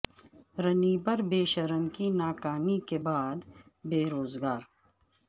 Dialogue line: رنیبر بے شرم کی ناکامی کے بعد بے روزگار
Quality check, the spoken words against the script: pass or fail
pass